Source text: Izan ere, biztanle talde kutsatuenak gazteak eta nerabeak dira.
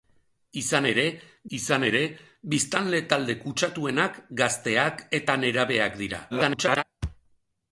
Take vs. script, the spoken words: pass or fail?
fail